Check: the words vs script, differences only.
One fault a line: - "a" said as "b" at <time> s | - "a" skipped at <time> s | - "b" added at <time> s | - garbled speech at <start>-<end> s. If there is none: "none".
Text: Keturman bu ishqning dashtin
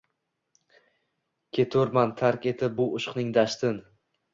- "tark etib" added at 2.2 s